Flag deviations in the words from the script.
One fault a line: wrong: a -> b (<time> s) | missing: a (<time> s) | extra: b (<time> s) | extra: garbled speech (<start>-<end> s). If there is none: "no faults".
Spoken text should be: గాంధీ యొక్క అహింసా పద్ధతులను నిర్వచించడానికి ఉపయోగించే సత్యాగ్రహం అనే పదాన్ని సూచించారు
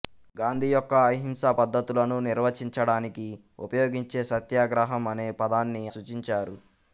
no faults